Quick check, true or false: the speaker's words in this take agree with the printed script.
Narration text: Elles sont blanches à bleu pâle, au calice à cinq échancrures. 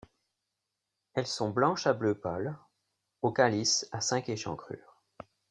true